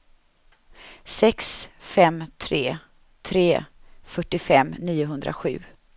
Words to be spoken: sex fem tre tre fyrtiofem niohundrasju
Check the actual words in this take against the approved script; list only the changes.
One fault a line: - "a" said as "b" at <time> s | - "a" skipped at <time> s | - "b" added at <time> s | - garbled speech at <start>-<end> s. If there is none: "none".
none